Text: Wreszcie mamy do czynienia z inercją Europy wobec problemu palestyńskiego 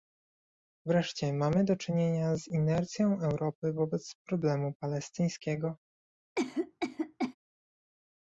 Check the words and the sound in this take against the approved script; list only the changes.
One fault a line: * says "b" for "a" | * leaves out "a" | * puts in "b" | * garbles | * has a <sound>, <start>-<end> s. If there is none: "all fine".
* has a cough, 6.4-7.4 s